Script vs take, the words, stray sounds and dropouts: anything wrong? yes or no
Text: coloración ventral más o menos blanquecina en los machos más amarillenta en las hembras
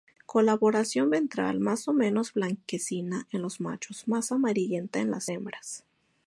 no